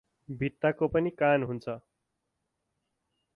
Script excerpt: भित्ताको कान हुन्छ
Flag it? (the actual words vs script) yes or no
yes